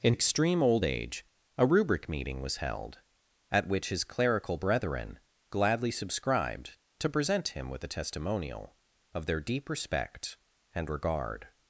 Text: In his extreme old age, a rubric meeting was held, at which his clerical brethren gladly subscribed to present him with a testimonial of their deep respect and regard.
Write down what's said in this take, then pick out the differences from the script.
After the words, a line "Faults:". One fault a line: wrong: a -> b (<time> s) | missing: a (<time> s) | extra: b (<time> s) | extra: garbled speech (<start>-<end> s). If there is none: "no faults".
In extreme old age, a rubric meeting was held, at which his clerical brethren gladly subscribed to present him with a testimonial of their deep respect and regard.
Faults:
missing: his (0.1 s)